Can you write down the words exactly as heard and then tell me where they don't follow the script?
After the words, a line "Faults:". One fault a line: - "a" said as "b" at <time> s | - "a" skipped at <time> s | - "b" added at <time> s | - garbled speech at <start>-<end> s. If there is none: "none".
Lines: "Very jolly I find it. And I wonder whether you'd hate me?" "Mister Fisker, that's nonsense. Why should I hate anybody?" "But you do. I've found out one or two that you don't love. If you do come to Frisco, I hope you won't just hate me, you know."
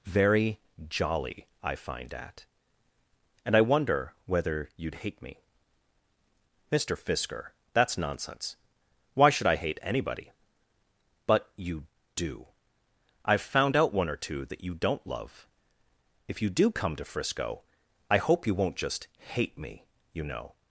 "Very jolly I find at. And I wonder whether you'd hate me?" "Mister Fisker, that's nonsense. Why should I hate anybody?" "But you do. I've found out one or two that you don't love. If you do come to Frisco, I hope you won't just hate me, you know."
Faults:
- "it" said as "at" at 2.1 s